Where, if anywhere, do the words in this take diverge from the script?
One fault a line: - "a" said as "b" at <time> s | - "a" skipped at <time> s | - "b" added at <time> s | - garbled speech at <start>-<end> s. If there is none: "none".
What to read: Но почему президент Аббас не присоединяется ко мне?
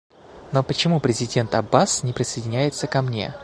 none